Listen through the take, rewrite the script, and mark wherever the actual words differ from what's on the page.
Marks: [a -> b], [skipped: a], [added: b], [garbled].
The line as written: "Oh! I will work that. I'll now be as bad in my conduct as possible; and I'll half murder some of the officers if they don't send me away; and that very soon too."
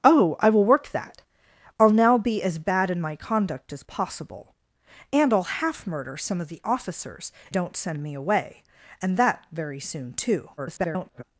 "Oh! I will work that. I'll now be as bad in my conduct as possible; and I'll half murder some of the officers [skipped: if they] don't send me away; and that very soon too." [garbled]